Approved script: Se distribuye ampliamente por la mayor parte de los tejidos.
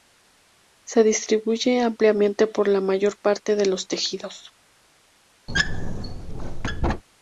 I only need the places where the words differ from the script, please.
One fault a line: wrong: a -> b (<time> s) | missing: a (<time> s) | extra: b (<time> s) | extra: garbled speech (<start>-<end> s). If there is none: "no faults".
no faults